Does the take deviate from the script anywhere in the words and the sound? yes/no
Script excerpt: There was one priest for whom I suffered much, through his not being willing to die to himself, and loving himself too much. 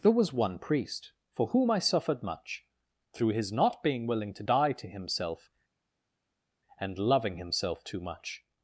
no